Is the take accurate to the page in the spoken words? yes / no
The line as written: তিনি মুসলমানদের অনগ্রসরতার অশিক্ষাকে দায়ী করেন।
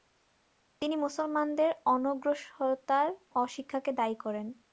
yes